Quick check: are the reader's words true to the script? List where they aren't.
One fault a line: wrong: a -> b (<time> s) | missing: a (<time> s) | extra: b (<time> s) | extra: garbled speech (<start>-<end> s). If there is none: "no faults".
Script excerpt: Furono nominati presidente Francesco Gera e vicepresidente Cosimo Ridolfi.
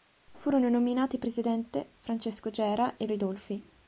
missing: vicepresidente Cosimo (3.0 s)